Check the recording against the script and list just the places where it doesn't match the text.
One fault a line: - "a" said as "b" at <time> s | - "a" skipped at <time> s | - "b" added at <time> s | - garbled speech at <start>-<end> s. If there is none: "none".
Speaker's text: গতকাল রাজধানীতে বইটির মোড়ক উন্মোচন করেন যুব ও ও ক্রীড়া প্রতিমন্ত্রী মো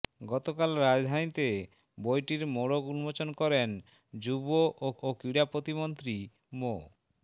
none